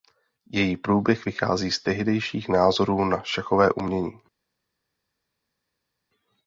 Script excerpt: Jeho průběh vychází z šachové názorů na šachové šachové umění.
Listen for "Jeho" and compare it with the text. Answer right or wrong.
wrong